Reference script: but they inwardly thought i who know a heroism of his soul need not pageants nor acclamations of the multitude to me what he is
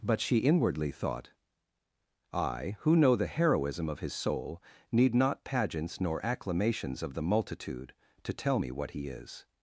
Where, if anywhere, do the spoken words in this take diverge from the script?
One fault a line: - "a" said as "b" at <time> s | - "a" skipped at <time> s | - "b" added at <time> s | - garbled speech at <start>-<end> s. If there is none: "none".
- "they" said as "she" at 0.2 s
- "a" said as "the" at 3.1 s
- "tell" added at 8.3 s